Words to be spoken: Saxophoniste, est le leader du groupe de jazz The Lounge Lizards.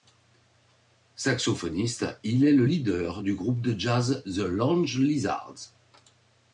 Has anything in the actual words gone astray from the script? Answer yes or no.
yes